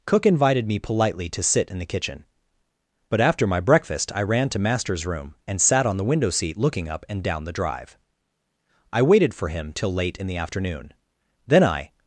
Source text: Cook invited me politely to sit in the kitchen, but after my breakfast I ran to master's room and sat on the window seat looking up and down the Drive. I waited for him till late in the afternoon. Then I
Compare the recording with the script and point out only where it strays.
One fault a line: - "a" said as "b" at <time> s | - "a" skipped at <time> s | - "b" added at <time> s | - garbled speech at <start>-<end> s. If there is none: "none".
none